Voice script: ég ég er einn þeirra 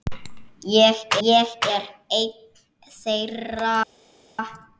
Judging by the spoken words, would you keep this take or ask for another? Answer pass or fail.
pass